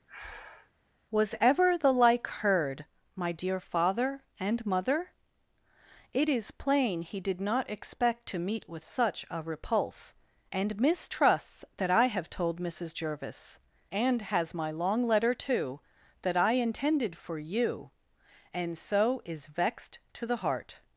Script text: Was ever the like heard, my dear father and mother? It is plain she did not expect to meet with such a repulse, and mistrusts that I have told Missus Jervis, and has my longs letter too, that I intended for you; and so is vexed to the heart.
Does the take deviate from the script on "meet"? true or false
false